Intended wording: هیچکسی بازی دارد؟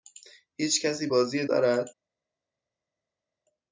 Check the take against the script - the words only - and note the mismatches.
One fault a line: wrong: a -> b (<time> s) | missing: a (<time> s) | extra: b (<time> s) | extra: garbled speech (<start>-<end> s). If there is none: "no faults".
no faults